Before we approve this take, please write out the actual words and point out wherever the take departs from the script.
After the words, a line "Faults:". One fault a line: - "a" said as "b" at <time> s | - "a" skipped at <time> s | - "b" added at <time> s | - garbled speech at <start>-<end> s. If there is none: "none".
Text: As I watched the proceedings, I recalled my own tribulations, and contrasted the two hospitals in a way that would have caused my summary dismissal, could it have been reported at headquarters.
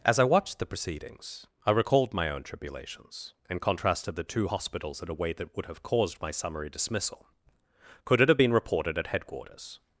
As I watched the proceedings, I recalled my own tribulations, and contrasted the two hospitals in a way that would have caused my summary dismissal, could it have been reported at headquarters.
Faults:
none